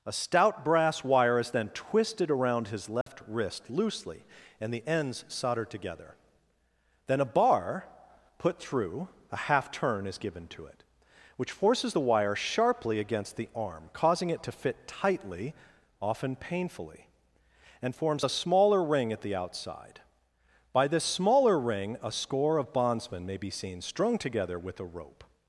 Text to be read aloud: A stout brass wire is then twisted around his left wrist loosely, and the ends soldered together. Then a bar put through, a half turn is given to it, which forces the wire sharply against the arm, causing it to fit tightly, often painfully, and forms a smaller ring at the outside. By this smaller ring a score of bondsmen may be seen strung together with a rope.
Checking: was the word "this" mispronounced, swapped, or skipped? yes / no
no